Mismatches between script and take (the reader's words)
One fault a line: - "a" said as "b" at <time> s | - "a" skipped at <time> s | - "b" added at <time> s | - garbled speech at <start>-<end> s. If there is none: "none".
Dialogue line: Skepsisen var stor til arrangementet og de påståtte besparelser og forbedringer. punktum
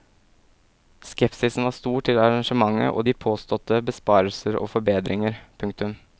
none